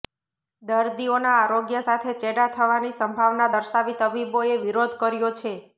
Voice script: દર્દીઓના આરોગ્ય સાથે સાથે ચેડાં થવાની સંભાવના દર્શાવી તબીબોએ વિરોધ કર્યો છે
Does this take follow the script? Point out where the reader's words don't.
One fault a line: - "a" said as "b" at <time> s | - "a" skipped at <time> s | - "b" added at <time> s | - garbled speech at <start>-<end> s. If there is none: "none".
- "સાથે" skipped at 2.1 s